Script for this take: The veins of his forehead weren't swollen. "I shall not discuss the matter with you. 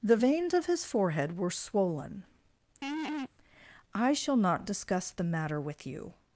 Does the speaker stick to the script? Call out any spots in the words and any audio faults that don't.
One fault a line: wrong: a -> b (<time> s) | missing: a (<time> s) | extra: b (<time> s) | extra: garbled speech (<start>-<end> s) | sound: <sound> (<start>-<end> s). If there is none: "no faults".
wrong: weren't -> were (1.4 s)
sound: laugh (2.8-3.3 s)